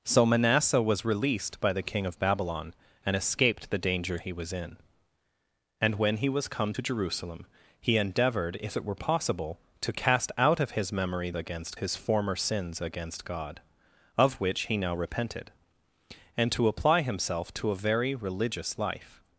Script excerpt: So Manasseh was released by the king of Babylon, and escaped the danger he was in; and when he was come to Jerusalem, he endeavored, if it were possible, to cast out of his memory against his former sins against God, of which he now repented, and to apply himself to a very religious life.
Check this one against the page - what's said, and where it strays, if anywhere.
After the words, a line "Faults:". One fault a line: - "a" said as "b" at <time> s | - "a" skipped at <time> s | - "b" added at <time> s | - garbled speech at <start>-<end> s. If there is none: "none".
So Manasseh was released by the king of Babylon, and escaped the danger he was in; and when he was come to Jerusalem, he endeavored, if it were possible, to cast out of his memory against his former sins against God, of which he now repented, and to apply himself to a very religious life.
Faults:
none